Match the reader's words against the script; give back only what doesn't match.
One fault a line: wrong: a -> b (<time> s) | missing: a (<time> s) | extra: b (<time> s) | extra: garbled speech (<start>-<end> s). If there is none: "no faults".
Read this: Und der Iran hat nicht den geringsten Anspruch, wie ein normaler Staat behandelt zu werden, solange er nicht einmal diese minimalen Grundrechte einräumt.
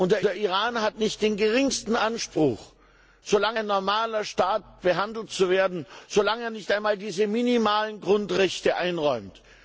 extra: der (0.2 s)
wrong: wie -> solange (3.2 s)